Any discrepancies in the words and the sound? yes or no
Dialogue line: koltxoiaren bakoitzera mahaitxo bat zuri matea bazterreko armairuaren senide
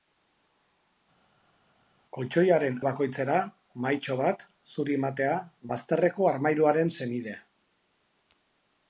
no